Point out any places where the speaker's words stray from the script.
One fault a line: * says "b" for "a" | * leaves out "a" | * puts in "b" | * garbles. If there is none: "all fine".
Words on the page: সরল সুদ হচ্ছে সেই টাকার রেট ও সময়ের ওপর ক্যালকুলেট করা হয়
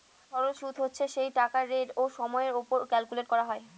all fine